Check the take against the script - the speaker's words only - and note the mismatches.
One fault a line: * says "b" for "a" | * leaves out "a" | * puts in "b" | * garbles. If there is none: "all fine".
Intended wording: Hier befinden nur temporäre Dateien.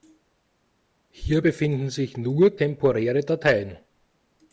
* puts in "sich"